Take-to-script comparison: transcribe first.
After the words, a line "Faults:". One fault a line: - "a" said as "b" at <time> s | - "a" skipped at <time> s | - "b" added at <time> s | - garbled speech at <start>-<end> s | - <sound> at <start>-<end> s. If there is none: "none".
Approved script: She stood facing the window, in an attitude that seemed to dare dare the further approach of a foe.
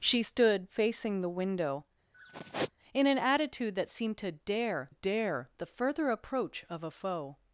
She stood facing the window, in an attitude that seemed to dare dare the further approach of a foe.
Faults:
- sigh at 2.1-2.7 s